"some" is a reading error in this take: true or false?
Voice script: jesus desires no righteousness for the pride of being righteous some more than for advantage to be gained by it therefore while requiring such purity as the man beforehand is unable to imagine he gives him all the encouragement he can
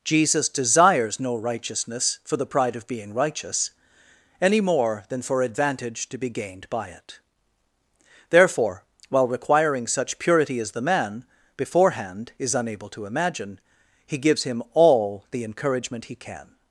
true